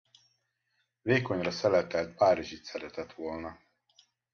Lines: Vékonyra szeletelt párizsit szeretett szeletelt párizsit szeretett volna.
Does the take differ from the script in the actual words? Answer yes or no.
yes